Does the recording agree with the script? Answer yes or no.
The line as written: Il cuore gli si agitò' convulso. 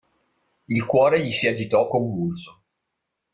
yes